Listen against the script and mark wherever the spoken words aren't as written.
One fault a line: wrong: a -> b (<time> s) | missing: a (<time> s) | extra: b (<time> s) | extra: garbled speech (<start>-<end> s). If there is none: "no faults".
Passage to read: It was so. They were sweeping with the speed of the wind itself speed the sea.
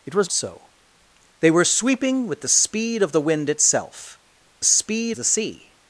no faults